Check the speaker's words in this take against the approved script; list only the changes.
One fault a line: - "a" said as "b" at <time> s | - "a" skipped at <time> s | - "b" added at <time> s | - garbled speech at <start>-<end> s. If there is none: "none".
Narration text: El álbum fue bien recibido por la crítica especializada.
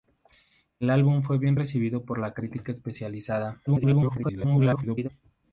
- garbled speech at 3.7-5.1 s